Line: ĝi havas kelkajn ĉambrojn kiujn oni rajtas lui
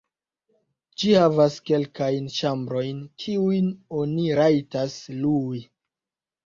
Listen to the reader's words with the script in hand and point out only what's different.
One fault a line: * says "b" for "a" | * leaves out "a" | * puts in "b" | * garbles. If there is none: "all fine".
all fine